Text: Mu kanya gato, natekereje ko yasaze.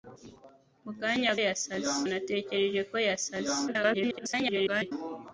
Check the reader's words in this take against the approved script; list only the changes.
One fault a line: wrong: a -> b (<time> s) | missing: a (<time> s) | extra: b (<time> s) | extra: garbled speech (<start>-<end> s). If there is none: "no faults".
wrong: gato -> yasaze (1.4 s)
extra: garbled speech (3.7-4.9 s)